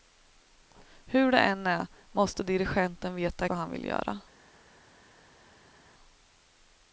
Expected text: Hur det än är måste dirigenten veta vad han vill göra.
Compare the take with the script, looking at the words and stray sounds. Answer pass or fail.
pass